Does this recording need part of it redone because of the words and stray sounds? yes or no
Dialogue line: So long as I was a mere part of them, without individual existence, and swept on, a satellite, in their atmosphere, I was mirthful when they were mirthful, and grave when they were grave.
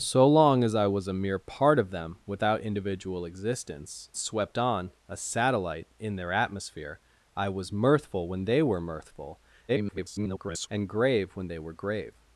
yes